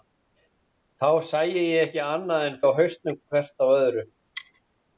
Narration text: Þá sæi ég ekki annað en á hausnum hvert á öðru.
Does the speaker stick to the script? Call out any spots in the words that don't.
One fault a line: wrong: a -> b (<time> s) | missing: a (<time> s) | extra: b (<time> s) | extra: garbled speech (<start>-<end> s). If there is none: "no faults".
no faults